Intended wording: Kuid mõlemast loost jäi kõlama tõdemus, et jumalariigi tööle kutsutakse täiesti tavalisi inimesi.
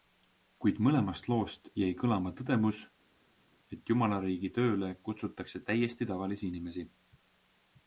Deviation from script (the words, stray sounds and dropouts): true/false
false